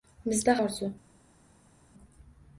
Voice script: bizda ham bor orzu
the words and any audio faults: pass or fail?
fail